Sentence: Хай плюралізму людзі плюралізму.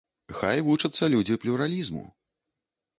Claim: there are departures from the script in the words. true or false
true